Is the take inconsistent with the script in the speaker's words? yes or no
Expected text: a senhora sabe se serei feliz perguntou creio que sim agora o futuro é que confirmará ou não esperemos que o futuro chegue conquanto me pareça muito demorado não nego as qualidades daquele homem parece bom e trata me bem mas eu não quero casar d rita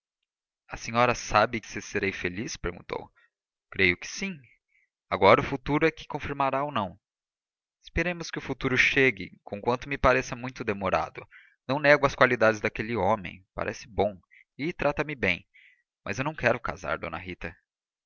no